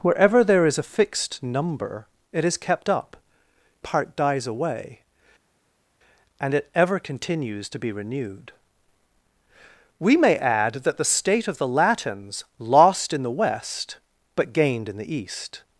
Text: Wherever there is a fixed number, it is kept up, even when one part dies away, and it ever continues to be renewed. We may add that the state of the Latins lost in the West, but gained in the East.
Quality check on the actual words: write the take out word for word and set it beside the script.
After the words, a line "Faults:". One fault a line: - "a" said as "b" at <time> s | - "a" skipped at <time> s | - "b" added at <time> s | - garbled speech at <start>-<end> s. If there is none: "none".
Wherever there is a fixed number, it is kept up, part dies away, and it ever continues to be renewed. We may add that the state of the Latins lost in the West, but gained in the East.
Faults:
- "even when one" skipped at 3.2 s